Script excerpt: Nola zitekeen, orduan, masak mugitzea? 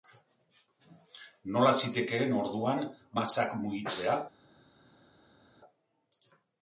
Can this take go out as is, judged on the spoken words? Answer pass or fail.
pass